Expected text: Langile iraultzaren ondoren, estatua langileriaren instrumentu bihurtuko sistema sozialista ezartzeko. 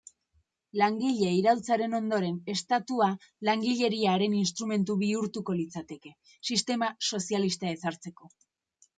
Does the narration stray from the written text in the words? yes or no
yes